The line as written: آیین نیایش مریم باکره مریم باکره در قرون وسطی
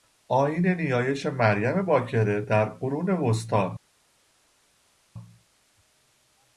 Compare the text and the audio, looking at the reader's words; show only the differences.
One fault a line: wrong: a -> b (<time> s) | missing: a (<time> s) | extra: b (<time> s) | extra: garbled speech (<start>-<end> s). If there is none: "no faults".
missing: مریم باکره (2.4 s)